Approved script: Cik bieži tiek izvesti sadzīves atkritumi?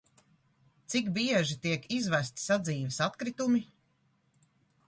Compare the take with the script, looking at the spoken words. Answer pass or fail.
pass